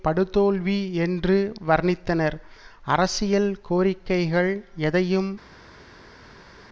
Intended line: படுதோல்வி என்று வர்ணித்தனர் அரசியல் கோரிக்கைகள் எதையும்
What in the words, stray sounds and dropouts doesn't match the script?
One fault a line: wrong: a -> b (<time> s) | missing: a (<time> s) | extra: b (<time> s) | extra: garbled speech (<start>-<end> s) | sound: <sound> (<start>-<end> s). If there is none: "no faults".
no faults